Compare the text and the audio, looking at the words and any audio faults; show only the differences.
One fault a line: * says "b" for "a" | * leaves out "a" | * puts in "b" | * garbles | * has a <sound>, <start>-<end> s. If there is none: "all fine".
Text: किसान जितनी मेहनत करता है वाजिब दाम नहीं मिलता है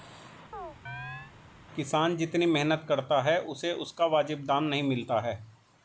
* has a chirp, 0.5-1.3 s
* puts in "उसे उसका"